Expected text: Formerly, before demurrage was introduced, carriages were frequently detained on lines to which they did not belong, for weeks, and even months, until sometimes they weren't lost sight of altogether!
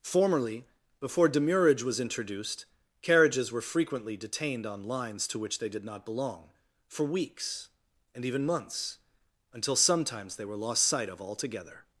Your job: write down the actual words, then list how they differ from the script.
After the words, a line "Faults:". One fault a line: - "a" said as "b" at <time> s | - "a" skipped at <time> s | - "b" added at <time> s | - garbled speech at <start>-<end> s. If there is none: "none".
Formerly, before demurrage was introduced, carriages were frequently detained on lines to which they did not belong, for weeks, and even months, until sometimes they were lost sight of altogether!
Faults:
- "weren't" said as "were" at 10.4 s